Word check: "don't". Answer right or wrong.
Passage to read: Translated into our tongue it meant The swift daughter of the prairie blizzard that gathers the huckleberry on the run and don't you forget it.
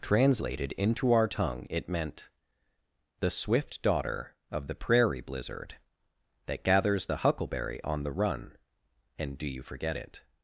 wrong